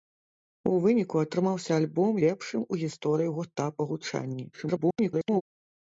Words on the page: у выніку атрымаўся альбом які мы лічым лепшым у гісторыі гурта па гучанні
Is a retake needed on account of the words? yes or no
yes